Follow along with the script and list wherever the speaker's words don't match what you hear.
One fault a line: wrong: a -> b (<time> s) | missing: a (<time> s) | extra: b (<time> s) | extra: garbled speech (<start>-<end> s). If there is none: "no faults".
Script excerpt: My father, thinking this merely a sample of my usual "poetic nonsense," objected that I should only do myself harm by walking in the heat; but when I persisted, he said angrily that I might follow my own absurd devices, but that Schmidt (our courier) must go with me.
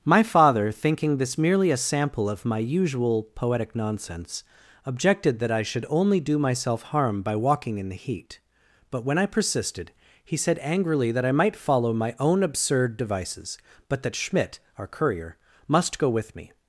no faults